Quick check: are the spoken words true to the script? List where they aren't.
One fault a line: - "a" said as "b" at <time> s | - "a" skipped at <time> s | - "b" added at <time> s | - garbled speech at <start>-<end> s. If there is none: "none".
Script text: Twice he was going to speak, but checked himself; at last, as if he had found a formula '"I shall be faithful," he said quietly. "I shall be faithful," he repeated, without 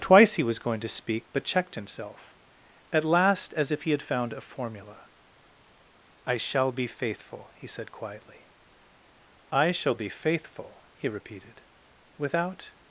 none